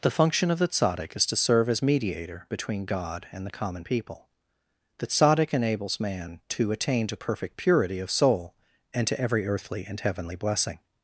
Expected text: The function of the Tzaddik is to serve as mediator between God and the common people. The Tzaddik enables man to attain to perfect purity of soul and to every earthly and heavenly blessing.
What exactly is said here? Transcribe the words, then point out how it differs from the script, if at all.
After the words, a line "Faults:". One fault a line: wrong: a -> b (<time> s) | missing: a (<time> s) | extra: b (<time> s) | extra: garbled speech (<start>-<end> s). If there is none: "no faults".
The function of the Tzaddik is to serve as mediator between God and the common people. The Tzaddik enables man to attain to perfect purity of soul and to every earthly and heavenly blessing.
Faults:
no faults